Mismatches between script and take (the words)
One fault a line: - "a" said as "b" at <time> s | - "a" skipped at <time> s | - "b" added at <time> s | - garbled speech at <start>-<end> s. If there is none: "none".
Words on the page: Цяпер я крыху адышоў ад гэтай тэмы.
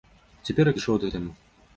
- "крыху" skipped at 0.8 s
- "гэтай" skipped at 1.1 s